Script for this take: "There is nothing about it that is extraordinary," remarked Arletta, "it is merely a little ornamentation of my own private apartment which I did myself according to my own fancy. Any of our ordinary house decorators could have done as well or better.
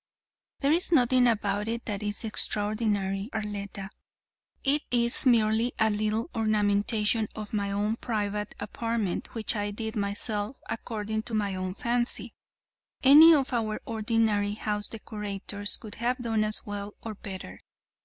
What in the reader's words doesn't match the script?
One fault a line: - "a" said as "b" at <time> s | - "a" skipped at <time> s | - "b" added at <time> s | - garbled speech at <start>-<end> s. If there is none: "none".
- "remarked" skipped at 3.3 s